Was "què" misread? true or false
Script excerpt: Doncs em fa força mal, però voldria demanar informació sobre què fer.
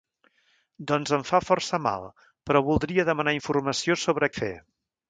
true